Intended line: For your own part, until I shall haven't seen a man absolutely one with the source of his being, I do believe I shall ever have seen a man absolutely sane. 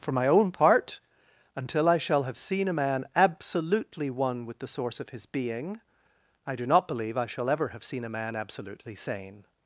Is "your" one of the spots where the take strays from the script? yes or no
yes